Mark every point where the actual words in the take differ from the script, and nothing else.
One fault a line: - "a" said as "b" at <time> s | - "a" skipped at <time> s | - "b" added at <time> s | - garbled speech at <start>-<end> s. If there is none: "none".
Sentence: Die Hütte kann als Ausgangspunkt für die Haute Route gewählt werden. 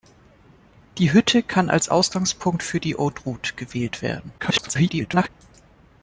- garbled speech at 4.4-5.3 s